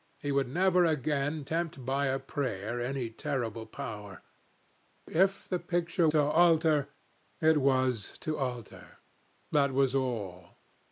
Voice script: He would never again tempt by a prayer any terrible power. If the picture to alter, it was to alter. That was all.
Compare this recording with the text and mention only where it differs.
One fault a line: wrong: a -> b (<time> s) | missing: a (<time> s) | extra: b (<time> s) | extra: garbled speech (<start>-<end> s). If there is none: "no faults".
no faults